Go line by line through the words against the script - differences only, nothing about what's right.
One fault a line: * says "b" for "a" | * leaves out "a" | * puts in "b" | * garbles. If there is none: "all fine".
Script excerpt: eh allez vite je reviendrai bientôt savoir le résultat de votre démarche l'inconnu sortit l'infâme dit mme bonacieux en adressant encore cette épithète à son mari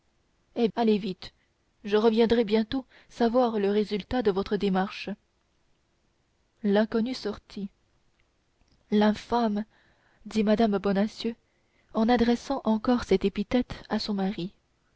all fine